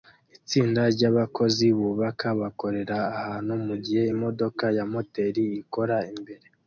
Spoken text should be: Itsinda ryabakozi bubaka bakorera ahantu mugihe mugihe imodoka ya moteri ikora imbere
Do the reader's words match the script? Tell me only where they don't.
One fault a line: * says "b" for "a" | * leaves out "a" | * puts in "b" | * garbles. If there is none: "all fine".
* leaves out "mugihe"